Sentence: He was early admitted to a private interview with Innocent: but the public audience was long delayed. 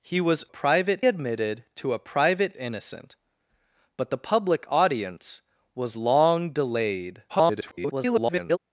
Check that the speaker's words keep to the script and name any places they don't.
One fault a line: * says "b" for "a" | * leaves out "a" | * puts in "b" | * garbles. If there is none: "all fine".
* says "private" for "early"
* leaves out "interview with"
* garbles